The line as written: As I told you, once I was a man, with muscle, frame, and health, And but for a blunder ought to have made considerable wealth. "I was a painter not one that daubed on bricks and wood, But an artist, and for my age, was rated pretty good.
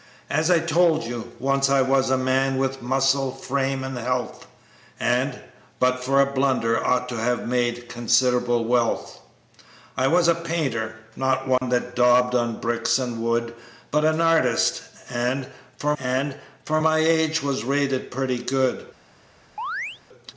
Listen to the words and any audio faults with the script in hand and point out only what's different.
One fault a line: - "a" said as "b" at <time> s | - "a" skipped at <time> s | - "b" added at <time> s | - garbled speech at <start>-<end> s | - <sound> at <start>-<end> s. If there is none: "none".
- dropout at 11.6-11.6 s
- "and for" added at 16.0 s
- chirp at 19.6-20.0 s